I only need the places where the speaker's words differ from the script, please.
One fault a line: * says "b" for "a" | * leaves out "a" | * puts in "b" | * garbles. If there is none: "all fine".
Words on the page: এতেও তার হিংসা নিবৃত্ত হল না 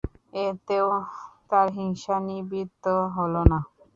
all fine